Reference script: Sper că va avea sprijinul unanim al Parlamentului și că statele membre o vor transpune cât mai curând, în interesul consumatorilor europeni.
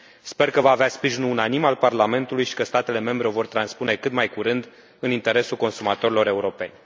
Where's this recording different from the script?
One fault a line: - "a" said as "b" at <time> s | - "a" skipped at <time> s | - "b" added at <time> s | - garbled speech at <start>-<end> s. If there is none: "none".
none